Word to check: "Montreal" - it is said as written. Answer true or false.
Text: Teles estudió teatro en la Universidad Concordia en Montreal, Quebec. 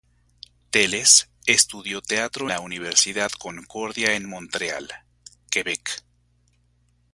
true